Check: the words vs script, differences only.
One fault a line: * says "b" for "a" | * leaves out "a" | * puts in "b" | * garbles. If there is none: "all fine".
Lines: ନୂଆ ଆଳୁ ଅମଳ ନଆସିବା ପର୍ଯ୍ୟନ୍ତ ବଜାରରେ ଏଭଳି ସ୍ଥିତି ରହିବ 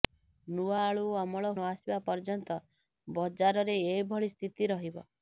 all fine